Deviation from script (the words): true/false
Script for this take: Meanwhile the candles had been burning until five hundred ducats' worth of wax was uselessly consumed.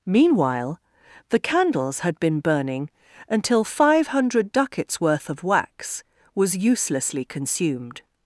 false